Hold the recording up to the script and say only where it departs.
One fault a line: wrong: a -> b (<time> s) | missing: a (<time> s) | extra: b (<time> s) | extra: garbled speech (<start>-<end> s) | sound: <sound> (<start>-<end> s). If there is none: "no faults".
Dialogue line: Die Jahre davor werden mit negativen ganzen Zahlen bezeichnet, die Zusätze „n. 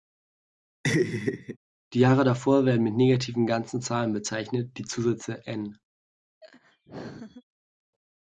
sound: laugh (0.8-1.6 s)
sound: laugh (6.4-7.4 s)